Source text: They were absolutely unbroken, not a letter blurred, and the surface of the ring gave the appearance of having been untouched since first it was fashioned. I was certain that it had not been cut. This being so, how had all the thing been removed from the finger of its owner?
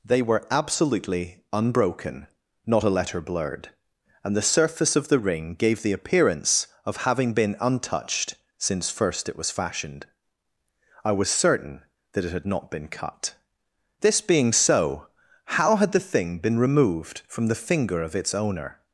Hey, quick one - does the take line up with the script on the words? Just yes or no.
no